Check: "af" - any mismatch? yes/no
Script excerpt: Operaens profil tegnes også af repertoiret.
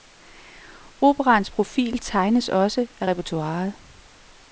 no